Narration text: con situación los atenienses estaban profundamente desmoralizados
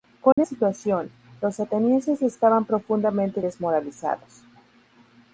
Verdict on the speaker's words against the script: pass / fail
pass